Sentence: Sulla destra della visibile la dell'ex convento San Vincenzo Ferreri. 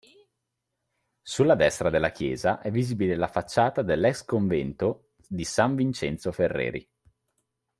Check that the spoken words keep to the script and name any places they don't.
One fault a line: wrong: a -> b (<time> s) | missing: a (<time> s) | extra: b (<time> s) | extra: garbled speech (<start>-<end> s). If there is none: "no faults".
extra: chiesa è (2.1 s)
extra: facciata (3.3 s)
extra: di (5.3 s)